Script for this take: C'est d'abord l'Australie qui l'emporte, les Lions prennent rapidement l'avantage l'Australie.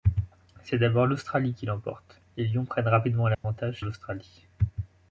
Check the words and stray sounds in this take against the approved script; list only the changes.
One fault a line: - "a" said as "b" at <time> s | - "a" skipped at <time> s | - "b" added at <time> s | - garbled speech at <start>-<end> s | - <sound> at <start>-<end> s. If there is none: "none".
- dropout at 3.3-3.4 s